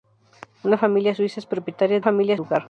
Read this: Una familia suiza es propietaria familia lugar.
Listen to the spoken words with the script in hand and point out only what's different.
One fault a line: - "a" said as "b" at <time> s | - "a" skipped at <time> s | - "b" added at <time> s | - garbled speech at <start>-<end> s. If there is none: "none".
none